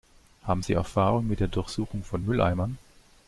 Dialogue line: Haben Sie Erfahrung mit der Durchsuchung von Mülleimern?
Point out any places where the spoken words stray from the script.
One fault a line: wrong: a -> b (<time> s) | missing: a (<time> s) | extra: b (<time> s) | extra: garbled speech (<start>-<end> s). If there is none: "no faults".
no faults